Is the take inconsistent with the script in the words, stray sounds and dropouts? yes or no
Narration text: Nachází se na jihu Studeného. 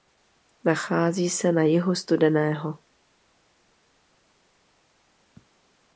no